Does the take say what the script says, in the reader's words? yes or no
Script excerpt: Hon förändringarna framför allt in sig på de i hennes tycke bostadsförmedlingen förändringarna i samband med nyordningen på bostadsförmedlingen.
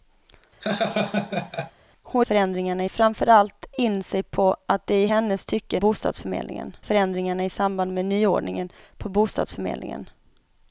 yes